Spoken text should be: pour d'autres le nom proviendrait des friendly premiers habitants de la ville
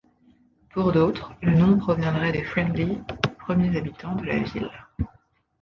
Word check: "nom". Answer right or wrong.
right